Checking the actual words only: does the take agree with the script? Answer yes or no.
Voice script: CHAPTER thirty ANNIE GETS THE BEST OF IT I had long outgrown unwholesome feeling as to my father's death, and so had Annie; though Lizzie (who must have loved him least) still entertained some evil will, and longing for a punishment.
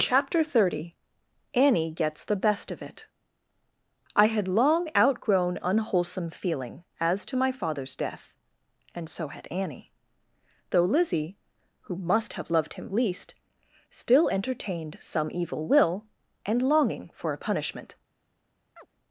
yes